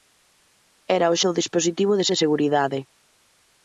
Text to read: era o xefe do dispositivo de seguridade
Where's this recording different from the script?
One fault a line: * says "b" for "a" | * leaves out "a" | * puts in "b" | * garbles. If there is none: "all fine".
* leaves out "xefe"
* puts in "de"